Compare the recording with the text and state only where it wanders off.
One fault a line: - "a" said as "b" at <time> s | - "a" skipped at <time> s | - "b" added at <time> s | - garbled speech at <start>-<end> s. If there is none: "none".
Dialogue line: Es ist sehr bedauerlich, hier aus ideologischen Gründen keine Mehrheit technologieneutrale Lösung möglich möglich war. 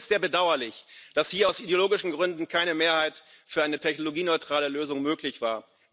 - "dass" added at 1.1 s
- "für eine" added at 3.4 s
- "möglich" skipped at 5.4 s